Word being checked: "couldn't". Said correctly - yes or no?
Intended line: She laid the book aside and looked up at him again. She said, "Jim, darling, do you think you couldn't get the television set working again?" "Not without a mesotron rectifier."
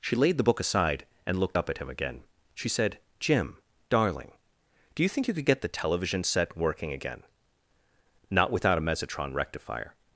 no